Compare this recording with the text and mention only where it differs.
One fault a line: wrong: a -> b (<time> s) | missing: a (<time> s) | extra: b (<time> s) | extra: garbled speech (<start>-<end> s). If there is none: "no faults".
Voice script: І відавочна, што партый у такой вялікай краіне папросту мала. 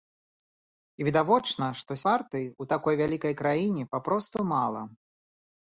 no faults